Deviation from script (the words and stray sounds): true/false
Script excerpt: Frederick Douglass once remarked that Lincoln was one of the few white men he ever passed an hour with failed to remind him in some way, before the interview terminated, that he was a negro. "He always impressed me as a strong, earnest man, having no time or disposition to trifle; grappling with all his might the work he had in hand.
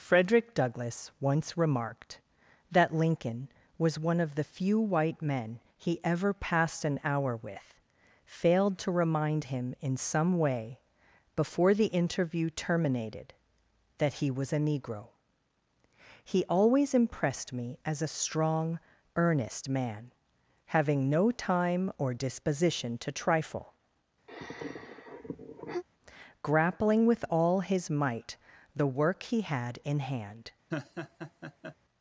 true